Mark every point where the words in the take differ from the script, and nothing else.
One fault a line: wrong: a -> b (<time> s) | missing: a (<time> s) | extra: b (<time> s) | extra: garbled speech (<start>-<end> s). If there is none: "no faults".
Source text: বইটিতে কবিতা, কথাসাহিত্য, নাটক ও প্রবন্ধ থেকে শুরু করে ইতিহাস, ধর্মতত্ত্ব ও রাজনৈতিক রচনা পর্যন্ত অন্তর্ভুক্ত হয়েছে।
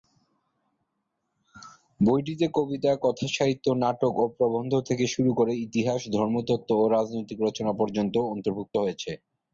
no faults